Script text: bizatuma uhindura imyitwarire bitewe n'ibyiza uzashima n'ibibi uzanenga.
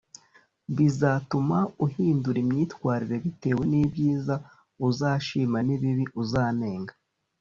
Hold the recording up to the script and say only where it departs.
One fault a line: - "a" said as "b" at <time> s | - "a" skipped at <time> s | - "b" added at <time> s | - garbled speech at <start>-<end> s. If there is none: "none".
none